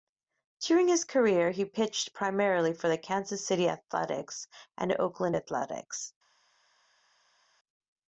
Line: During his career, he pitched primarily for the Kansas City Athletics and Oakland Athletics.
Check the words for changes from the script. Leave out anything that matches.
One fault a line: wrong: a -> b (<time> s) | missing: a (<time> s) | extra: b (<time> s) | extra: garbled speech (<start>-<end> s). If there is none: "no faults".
no faults